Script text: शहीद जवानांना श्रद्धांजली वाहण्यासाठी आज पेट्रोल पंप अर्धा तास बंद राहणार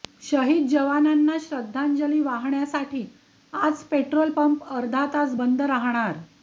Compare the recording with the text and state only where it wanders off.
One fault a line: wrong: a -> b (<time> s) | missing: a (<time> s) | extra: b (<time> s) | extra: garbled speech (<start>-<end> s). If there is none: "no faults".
no faults